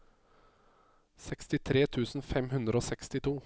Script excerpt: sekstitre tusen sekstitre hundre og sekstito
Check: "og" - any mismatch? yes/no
no